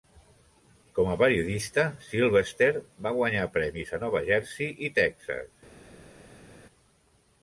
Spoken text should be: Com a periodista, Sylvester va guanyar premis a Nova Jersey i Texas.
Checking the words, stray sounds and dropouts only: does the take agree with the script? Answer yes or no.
yes